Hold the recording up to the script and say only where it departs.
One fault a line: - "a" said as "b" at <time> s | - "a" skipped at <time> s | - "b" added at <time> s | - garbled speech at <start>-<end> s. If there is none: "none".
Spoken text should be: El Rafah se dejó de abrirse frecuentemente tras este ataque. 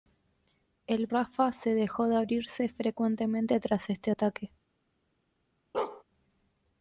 none